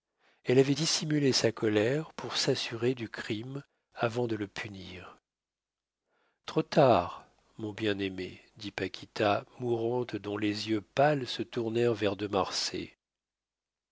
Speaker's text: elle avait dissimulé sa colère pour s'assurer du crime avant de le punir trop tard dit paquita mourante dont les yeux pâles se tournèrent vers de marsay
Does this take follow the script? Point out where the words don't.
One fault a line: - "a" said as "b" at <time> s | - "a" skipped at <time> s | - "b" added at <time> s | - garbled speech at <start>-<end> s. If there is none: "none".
- "mon bien aimé" added at 7.6 s